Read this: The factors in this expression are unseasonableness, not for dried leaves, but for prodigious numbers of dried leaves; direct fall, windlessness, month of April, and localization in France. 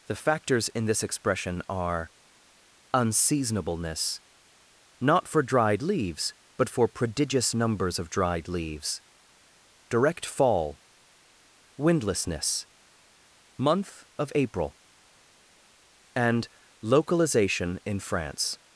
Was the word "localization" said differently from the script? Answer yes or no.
no